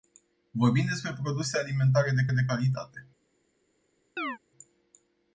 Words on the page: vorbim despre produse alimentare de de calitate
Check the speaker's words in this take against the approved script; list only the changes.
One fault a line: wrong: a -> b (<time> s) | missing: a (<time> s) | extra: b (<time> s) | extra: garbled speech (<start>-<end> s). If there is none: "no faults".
no faults